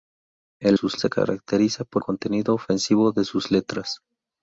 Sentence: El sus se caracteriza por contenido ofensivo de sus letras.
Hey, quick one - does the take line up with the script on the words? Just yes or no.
yes